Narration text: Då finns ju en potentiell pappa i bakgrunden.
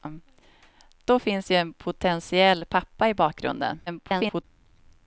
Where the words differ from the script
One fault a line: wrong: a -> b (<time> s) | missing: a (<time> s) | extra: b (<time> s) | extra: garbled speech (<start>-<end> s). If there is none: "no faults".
extra: garbled speech (3.9-4.4 s)